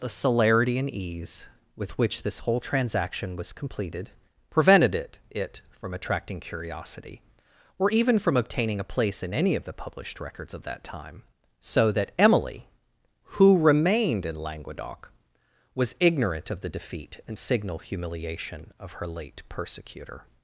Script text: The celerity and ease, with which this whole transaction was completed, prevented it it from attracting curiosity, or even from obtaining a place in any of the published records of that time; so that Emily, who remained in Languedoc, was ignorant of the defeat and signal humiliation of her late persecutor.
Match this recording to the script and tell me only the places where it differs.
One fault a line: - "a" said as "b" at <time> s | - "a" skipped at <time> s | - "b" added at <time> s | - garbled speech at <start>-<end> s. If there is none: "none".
none